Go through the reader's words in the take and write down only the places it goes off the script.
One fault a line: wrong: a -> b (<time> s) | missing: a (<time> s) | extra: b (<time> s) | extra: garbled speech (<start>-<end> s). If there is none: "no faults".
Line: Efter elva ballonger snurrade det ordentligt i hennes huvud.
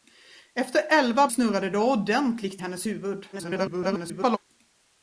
missing: ballonger (1.3 s)
missing: i (2.6 s)
extra: garbled speech (3.3-4.4 s)